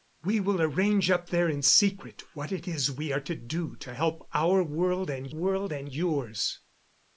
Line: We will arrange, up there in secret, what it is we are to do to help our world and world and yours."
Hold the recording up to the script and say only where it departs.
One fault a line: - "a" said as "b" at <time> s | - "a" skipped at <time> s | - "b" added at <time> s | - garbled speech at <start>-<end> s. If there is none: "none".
none